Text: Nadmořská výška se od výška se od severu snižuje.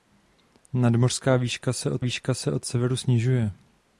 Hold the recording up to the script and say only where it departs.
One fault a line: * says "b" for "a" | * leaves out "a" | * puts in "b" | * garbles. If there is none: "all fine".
all fine